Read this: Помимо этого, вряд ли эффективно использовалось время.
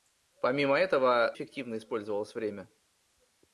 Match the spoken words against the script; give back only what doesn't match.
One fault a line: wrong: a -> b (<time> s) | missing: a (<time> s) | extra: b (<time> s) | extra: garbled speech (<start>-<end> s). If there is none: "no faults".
missing: вряд ли (1.4 s)